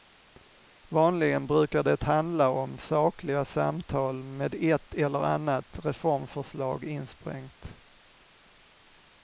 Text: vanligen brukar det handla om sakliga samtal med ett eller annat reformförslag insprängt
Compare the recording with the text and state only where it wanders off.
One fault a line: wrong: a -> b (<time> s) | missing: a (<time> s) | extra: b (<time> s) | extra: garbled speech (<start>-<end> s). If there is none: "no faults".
no faults